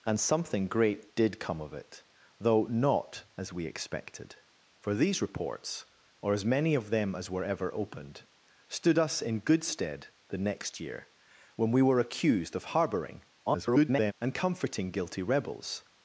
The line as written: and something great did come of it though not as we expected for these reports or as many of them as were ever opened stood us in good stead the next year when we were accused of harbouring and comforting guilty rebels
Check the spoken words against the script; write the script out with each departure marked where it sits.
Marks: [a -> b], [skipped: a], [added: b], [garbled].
and something great did come of it though not as we expected for these reports or as many of them as were ever opened stood us in good stead the next year when we were accused of harbouring [garbled] and comforting guilty rebels